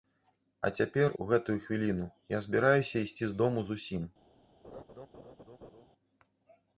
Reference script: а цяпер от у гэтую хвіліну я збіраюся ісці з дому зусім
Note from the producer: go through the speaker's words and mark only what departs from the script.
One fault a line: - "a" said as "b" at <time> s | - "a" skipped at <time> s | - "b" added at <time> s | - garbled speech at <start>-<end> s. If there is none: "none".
- "от" skipped at 1.1 s